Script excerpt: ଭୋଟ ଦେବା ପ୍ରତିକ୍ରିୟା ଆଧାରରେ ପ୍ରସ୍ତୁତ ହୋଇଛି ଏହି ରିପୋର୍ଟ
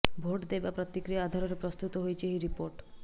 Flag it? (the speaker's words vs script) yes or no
no